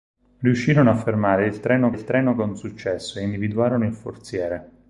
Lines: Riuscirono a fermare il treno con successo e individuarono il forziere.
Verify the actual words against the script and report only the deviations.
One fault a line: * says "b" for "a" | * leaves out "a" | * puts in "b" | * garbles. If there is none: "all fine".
* puts in "il treno"